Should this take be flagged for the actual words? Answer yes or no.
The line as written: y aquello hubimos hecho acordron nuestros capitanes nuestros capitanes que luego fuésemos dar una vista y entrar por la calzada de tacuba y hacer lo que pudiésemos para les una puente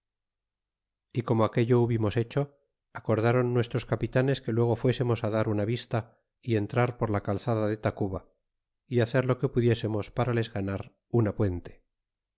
yes